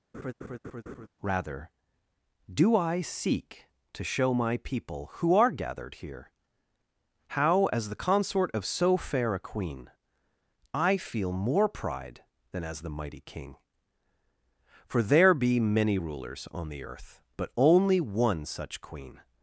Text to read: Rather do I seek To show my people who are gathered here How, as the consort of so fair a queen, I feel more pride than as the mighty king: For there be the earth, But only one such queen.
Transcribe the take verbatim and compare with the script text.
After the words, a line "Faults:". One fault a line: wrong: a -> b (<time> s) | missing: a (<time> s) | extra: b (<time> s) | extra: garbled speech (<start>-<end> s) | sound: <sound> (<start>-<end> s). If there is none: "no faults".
Rather do I seek To show my people who are gathered here How, as the consort of so fair a queen, I feel more pride than as the mighty king: For there be many rulers on the earth, But only one such queen.
Faults:
sound: laugh (0.1-1.1 s)
extra: many rulers on (15.6 s)